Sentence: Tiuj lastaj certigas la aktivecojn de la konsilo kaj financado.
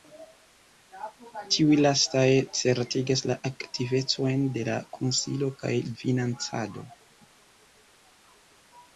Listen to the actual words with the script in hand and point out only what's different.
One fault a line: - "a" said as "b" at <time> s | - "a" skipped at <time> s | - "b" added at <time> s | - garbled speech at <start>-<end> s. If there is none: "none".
none